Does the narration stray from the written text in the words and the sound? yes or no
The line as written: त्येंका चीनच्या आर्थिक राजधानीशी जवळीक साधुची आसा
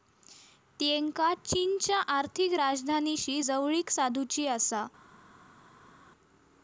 no